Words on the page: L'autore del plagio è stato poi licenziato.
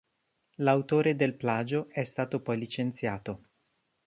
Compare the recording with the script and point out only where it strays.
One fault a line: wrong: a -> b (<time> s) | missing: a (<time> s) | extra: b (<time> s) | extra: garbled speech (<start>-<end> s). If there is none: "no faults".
no faults